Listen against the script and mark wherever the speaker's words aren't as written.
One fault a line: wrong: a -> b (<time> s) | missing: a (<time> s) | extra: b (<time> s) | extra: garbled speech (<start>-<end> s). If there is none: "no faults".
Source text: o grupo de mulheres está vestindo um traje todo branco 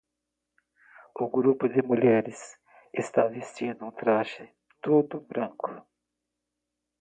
no faults